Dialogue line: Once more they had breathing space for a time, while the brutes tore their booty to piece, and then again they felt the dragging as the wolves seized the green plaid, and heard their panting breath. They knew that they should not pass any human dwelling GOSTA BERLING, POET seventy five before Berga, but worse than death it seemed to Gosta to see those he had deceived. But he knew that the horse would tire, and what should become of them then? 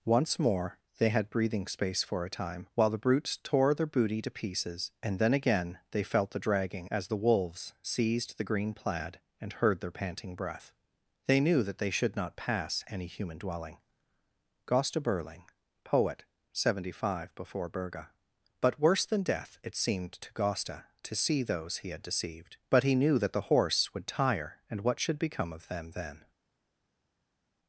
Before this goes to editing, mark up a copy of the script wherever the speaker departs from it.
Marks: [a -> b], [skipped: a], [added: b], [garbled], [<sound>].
Once more they had breathing space for a time, while the brutes tore their booty to [piece, -> pieces] and then again they felt the dragging as the wolves seized the green plaid, and heard their panting breath. They knew that they should not pass any human dwelling GOSTA BERLING, POET seventy five before Berga, but worse than death it seemed to Gosta to see those he had deceived. But he knew that the horse would tire, and what should become of them then?